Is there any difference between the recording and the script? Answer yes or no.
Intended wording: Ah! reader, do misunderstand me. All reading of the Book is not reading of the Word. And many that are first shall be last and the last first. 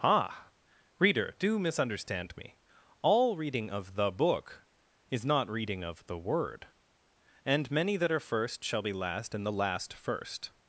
no